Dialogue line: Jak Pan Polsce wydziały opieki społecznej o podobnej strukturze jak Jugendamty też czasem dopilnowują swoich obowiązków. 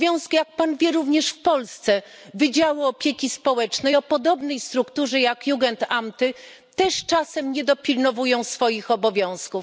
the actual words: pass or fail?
fail